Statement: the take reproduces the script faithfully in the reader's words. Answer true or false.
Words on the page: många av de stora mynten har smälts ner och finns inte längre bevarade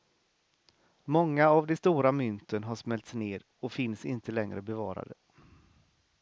true